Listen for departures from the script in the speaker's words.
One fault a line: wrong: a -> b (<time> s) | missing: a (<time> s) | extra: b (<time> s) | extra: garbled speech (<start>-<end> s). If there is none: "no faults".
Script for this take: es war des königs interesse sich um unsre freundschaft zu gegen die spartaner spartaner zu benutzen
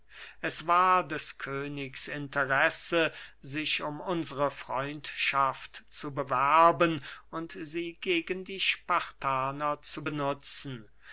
extra: bewerben und sie (6.1 s)
missing: spartaner (9.8 s)